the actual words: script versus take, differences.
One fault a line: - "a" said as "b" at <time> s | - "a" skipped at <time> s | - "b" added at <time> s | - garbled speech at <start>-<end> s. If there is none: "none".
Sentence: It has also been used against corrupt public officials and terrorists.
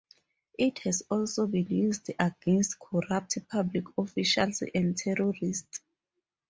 none